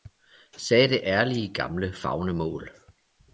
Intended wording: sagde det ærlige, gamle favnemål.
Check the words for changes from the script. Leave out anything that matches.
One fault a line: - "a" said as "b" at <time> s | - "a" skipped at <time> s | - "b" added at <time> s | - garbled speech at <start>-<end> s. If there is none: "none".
none